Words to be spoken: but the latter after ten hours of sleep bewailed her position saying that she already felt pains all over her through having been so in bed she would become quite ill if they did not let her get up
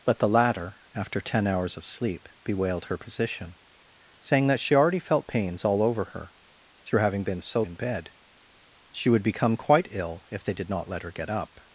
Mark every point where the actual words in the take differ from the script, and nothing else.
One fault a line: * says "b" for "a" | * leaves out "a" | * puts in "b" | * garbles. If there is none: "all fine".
all fine